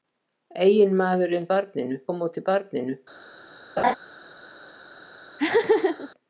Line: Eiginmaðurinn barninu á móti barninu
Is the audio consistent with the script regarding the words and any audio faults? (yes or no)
no